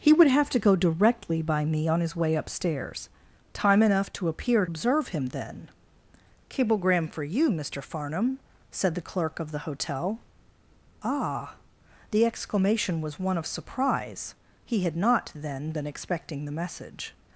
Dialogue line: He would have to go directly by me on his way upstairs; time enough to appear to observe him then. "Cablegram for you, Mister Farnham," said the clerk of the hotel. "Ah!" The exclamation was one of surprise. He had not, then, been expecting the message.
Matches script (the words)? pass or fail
fail